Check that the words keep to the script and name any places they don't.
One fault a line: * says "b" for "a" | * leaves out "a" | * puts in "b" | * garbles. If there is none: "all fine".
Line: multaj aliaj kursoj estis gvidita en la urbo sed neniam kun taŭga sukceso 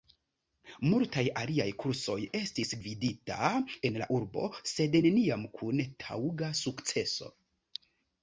all fine